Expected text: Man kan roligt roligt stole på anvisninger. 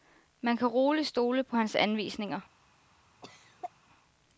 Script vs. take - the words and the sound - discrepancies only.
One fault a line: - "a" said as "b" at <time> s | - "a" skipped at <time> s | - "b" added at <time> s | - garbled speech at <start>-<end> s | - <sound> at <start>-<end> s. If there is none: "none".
- "roligt" skipped at 1.1 s
- "hans" added at 1.6 s
- cough at 3.2-3.7 s